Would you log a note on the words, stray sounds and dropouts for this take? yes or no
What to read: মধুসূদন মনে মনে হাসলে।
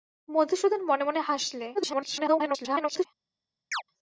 yes